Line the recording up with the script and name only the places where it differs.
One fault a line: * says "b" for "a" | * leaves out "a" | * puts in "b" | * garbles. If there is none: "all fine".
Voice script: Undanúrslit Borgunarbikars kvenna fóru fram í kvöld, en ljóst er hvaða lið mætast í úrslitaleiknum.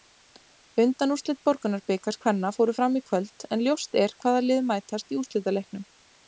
all fine